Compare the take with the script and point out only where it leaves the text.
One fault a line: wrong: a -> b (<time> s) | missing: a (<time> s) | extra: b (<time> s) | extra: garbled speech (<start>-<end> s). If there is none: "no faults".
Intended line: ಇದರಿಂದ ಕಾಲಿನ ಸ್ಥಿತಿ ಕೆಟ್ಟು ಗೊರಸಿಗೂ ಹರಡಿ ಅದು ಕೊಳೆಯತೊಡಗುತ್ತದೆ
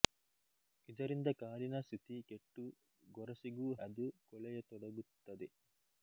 missing: ಹರಡಿ (3.7 s)